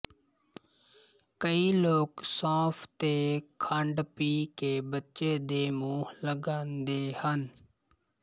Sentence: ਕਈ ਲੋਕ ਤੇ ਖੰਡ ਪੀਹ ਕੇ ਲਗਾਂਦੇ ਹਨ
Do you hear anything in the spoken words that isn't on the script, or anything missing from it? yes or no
yes